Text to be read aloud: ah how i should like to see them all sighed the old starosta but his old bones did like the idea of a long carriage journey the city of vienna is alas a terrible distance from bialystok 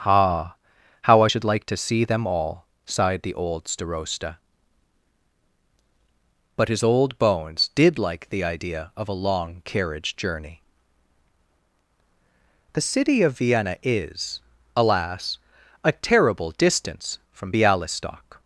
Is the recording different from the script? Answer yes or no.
no